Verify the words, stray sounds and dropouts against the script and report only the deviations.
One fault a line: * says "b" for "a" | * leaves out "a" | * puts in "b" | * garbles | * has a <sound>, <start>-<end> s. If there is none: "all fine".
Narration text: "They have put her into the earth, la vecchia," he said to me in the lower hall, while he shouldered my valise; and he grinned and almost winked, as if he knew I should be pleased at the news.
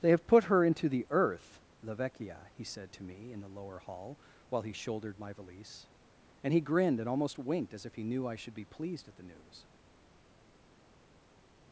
all fine